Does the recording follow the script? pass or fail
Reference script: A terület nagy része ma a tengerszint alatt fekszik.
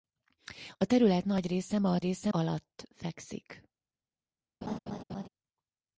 fail